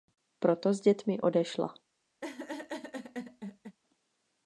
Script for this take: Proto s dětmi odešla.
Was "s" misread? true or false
false